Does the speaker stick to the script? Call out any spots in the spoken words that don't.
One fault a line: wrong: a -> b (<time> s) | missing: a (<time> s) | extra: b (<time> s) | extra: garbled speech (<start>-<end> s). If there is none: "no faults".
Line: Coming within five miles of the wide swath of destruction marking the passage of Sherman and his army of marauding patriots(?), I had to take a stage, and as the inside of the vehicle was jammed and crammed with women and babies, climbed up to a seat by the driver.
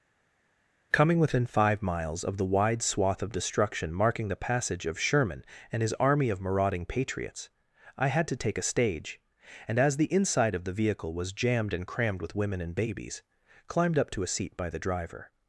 no faults